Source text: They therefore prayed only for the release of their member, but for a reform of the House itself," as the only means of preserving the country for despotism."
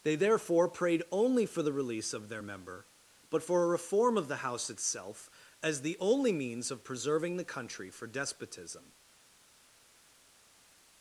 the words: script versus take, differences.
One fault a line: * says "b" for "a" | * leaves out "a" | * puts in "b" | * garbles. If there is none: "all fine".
all fine